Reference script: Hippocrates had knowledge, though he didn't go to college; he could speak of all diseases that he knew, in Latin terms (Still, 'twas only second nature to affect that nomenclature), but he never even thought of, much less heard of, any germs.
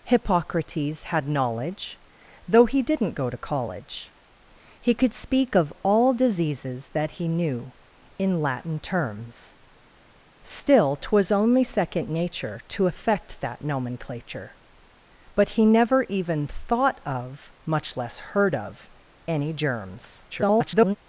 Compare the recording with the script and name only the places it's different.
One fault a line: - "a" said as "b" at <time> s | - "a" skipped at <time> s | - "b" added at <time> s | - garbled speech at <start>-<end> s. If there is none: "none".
- garbled speech at 20.3-21.0 s